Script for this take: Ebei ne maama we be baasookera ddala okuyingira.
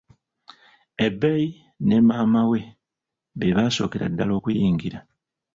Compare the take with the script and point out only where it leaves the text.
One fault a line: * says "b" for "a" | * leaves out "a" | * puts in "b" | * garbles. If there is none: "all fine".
all fine